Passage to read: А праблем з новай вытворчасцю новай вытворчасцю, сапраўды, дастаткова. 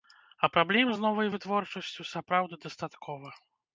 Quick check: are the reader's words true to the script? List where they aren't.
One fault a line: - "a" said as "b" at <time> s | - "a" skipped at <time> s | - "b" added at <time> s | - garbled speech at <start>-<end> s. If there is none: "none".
- "новай вытворчасцю" skipped at 2.1 s